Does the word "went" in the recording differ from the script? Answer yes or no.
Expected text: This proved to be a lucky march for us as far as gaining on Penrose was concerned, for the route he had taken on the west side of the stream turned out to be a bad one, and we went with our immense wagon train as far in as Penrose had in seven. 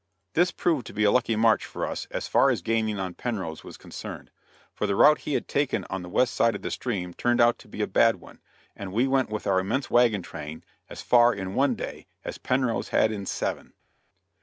no